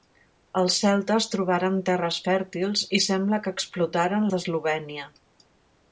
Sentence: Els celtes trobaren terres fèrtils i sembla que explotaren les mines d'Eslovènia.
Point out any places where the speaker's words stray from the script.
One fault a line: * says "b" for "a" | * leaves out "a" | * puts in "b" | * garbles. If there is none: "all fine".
* leaves out "les mines"